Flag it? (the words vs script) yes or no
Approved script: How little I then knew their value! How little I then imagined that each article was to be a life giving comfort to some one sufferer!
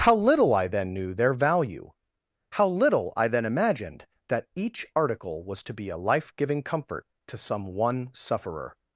no